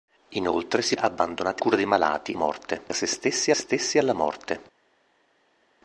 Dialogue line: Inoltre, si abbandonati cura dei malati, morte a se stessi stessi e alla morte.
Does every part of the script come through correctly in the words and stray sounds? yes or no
yes